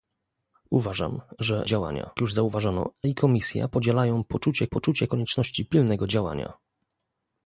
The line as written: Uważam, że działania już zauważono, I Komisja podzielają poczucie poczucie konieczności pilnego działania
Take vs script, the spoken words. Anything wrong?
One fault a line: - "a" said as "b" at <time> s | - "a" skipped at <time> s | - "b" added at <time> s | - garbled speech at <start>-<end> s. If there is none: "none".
none